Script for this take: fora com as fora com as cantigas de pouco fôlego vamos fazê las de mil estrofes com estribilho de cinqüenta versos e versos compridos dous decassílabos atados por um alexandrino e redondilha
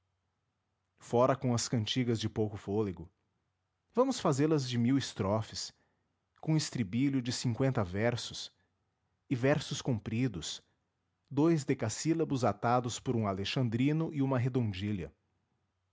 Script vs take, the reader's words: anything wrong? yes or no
yes